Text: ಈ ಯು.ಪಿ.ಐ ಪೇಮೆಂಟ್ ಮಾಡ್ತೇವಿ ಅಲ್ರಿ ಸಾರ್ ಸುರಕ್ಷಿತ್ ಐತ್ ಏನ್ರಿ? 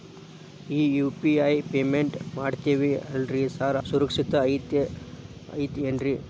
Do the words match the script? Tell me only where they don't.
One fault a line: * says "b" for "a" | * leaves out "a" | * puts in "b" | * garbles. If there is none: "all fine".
all fine